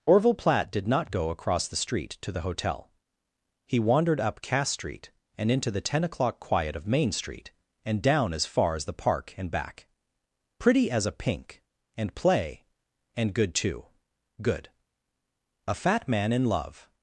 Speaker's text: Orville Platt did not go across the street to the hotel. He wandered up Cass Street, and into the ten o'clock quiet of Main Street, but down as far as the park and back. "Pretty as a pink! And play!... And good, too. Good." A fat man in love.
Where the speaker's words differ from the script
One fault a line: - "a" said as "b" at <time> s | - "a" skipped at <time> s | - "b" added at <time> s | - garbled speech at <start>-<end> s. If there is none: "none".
- "but" said as "and" at 7.8 s